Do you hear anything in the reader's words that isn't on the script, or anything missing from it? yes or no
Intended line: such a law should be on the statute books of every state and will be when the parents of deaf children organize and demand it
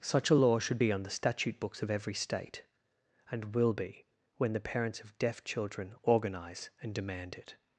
no